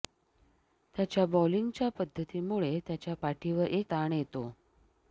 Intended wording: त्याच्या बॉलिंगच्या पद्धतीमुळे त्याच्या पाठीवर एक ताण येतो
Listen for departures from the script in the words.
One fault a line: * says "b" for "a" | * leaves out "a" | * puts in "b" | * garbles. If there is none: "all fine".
all fine